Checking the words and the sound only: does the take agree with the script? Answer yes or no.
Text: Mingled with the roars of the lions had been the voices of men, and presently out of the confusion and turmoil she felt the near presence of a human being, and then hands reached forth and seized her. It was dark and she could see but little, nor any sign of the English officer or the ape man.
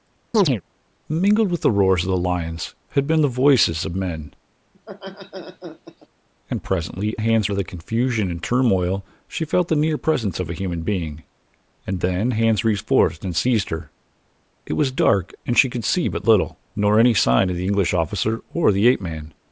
no